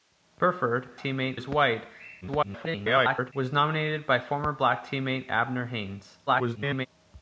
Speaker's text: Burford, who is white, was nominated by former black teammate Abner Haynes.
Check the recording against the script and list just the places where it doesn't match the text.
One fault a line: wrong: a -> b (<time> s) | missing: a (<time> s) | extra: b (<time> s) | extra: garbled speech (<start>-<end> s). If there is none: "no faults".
wrong: who -> teammate (1.0 s)
extra: garbled speech (2.2-3.3 s)
extra: garbled speech (6.3-6.9 s)